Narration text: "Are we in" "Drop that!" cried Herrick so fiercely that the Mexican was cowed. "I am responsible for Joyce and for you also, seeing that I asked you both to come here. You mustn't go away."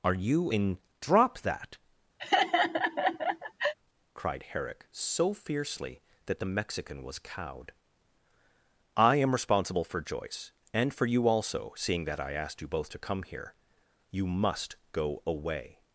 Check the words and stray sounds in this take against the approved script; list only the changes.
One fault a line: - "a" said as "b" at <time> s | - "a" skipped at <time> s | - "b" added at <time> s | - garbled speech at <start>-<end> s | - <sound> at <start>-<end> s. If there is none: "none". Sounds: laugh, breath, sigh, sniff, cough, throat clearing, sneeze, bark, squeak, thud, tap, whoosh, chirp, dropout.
- "we" said as "you" at 0.1 s
- laugh at 2.2-3.7 s
- "mustn't" said as "must" at 14.3 s